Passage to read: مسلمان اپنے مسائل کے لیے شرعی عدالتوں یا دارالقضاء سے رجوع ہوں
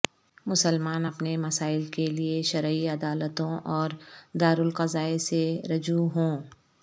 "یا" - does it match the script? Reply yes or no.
no